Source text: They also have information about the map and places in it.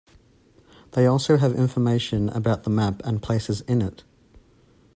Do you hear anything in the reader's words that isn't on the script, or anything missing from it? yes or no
no